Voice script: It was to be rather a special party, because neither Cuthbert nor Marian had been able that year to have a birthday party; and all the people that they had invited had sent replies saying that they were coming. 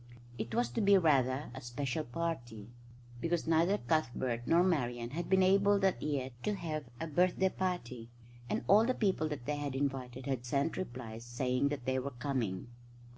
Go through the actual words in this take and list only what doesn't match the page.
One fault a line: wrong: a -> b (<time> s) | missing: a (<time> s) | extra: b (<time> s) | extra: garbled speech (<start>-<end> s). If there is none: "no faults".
no faults